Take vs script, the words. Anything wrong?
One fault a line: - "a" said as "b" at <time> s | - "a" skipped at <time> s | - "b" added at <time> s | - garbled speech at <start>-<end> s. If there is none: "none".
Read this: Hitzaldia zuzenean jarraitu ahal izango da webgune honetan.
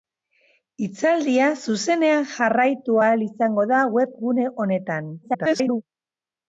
- garbled speech at 5.2-5.8 s